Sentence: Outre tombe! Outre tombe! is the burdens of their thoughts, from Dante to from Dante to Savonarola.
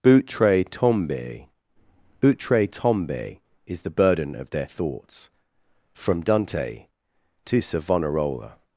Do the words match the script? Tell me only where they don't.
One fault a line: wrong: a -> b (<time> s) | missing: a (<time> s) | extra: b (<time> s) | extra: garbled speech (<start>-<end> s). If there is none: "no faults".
wrong: burdens -> burden (3.9 s)
missing: from Dante to (7.6 s)